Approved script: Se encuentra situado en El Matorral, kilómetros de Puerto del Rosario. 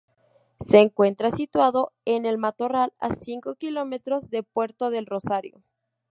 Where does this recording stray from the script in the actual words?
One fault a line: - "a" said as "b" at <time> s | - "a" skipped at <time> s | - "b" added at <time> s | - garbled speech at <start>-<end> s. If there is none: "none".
- "a cinco" added at 3.0 s